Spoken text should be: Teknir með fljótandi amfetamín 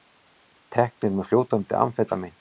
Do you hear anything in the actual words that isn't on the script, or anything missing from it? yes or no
no